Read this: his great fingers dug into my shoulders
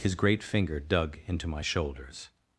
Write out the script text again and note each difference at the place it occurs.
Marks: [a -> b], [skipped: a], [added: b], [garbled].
his great [fingers -> finger] dug into my shoulders